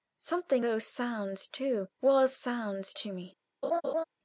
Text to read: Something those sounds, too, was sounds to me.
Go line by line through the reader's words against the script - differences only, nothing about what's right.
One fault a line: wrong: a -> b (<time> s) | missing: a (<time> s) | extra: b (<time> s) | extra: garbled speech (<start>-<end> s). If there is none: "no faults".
no faults